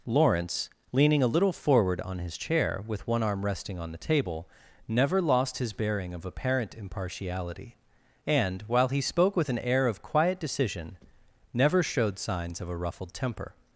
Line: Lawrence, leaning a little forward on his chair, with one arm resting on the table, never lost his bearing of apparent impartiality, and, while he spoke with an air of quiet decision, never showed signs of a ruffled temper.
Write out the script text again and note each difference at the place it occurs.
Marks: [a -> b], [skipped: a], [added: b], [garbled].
Lawrence, leaning a little forward on his chair, with one arm resting on the table, never lost his bearing of apparent impartiality, and, while he spoke with an air of quiet decision, never showed signs of a ruffled temper.